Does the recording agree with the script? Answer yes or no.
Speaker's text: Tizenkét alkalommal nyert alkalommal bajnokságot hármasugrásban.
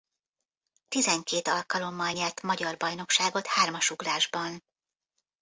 no